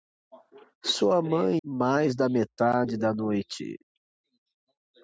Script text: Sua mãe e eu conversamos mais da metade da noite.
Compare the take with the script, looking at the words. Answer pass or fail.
fail